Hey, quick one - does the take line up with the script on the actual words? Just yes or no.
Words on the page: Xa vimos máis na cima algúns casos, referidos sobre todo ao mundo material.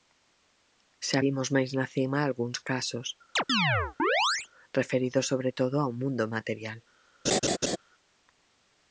yes